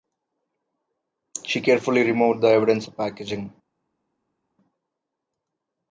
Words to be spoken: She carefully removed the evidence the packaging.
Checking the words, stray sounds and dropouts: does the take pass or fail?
pass